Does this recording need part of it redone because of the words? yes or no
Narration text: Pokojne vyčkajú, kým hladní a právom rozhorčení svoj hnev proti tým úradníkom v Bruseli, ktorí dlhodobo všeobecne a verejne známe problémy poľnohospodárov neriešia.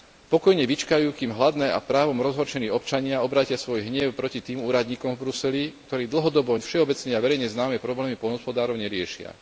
yes